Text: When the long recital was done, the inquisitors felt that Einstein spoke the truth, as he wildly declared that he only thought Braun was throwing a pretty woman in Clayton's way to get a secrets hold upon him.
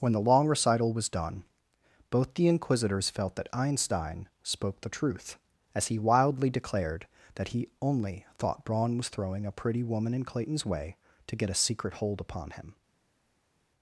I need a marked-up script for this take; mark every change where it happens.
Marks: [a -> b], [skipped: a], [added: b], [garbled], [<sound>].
When the long recital was done, [added: both] the inquisitors felt that Einstein spoke the truth, as he wildly declared that he only thought Braun was throwing a pretty woman in Clayton's way to get a [secrets -> secret] hold upon him.